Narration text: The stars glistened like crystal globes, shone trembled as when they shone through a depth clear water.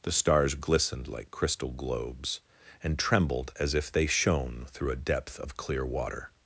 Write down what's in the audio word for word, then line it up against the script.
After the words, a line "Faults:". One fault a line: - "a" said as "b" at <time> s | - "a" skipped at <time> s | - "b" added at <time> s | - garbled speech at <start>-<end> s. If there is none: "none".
The stars glistened like crystal globes, and trembled as if they shone through a depth of clear water.
Faults:
- "shone" said as "and" at 2.8 s
- "when" said as "if" at 3.8 s
- "of" added at 5.4 s